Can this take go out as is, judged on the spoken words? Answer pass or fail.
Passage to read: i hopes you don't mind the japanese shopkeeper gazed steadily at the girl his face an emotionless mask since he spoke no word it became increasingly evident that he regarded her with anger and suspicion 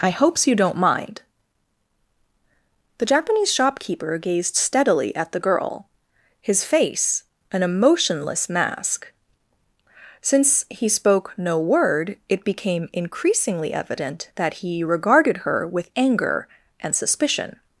pass